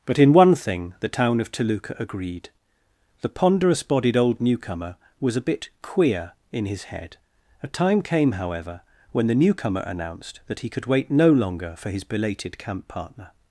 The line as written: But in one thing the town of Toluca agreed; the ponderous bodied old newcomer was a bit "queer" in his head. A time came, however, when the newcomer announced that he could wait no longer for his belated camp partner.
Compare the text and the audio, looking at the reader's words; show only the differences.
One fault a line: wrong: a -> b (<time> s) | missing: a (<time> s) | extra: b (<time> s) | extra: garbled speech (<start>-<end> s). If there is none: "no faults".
no faults